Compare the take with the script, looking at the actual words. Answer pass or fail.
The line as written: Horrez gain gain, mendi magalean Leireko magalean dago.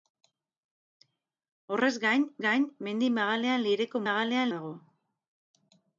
pass